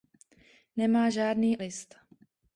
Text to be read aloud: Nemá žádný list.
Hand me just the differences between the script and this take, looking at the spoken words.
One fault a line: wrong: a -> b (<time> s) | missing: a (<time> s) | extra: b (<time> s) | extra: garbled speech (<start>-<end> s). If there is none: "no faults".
no faults